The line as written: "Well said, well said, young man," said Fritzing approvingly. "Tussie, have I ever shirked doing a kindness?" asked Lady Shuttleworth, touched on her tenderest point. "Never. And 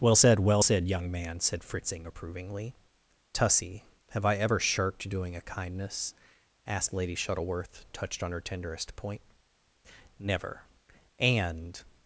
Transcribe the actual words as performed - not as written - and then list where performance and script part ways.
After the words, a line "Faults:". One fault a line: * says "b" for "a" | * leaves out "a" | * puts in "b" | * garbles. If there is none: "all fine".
"Well said, well said, young man," said Fritzing approvingly. "Tussie, have I ever shirked doing a kindness?" asked Lady Shuttleworth, touched on her tenderest point. "Never. And
Faults:
all fine